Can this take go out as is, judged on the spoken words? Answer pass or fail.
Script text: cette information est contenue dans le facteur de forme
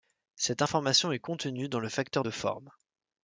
pass